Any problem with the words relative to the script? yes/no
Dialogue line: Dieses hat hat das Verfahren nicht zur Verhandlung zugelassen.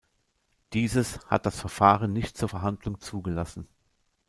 yes